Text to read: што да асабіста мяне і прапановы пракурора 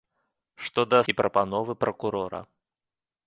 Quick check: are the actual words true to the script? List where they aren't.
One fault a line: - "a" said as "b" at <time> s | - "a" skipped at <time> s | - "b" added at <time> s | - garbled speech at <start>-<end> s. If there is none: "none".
- "асабіста мяне" skipped at 1.0 s